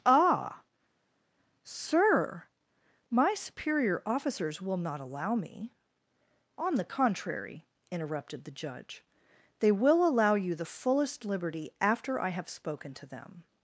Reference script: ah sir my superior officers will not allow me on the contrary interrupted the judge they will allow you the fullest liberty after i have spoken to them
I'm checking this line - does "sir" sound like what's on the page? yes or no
yes